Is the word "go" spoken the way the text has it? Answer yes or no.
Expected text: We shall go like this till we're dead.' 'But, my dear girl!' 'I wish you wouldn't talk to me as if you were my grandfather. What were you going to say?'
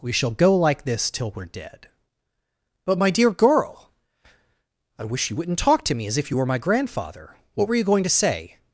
yes